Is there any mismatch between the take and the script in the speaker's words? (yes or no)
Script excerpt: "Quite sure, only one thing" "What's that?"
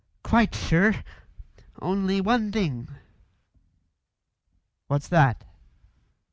no